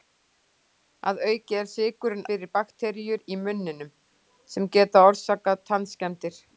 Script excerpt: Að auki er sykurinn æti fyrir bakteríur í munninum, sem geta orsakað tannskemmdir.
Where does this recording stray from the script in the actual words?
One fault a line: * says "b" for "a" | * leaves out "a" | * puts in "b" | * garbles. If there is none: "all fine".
* leaves out "æti"